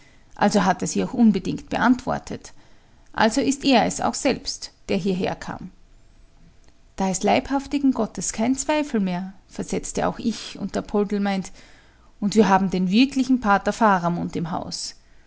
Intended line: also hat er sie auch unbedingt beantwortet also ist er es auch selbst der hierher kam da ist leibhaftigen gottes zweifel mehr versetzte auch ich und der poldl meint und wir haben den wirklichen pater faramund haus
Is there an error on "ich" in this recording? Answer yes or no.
no